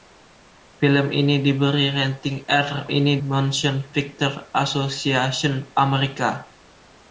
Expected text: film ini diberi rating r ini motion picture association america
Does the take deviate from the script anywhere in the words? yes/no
no